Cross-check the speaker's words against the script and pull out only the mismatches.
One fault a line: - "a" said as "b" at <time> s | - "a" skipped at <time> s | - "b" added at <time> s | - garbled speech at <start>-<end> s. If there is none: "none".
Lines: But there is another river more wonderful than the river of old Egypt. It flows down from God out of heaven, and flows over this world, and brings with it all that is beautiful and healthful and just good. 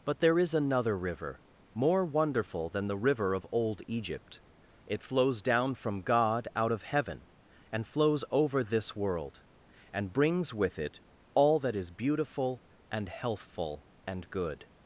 - "just" skipped at 14.3 s